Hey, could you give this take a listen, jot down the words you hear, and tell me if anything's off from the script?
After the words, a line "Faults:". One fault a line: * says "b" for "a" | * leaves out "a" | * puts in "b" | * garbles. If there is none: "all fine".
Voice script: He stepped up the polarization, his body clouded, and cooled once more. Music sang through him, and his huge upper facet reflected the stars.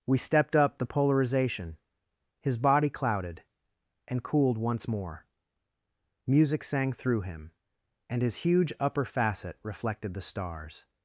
We stepped up the polarization, his body clouded, and cooled once more. Music sang through him, and his huge upper facet reflected the stars.
Faults:
* says "We" for "He"